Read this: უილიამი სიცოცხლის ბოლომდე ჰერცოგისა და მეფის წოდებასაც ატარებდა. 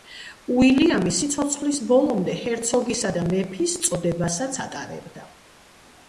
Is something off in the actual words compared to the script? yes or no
no